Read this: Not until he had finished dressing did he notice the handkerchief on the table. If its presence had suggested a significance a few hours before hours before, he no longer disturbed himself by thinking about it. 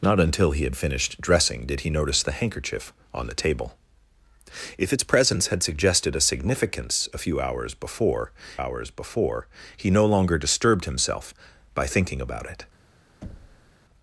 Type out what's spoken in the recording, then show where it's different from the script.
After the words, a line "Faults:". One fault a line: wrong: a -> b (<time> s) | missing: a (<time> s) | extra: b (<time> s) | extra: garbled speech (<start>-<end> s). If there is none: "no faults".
Not until he had finished dressing did he notice the handkerchief on the table. If its presence had suggested a significance a few hours before hours before, he no longer disturbed himself by thinking about it.
Faults:
no faults